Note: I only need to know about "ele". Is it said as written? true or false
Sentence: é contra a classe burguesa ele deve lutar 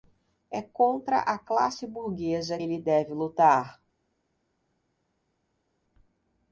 true